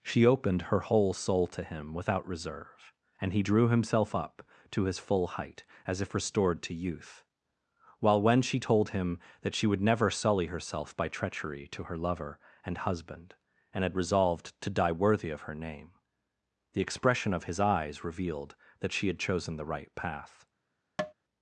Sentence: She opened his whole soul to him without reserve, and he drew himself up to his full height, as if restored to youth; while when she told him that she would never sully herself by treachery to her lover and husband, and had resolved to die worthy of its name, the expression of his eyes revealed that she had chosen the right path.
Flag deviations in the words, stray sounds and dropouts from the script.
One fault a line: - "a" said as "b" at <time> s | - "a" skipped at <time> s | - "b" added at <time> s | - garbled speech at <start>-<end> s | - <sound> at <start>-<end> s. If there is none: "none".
- "his" said as "her" at 0.6 s
- "its" said as "her" at 15.4 s
- tap at 21.0-21.1 s